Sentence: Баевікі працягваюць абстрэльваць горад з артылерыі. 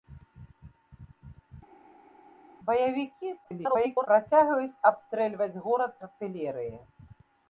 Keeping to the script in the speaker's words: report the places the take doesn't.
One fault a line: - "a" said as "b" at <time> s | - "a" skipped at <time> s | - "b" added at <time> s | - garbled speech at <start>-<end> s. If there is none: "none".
- garbled speech at 3.4-4.1 s
- "з" skipped at 5.9 s